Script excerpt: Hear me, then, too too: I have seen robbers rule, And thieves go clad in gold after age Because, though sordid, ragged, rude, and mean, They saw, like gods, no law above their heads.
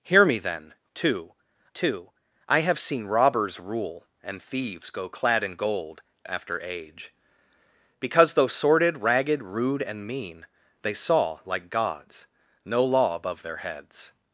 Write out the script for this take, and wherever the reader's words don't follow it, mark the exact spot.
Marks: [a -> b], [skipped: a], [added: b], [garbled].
Hear me, then, too too: I have seen robbers rule, And thieves go clad in gold after age Because, though sordid, ragged, rude, and mean, They saw, like gods, no law above their heads.